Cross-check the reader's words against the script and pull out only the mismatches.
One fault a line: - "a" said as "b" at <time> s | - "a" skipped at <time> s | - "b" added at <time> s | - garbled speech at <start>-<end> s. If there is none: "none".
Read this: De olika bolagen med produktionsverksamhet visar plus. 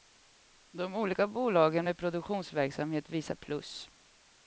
none